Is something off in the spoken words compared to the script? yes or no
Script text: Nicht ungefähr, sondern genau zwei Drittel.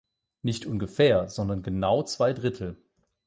no